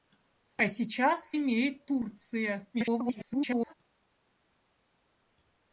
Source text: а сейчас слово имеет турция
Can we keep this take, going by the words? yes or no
no